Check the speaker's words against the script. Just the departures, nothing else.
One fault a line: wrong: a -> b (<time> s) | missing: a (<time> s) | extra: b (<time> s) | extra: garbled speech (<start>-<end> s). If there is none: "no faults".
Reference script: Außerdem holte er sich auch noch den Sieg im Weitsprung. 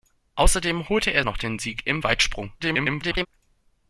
missing: sich auch (1.2 s)
extra: garbled speech (2.6-3.3 s)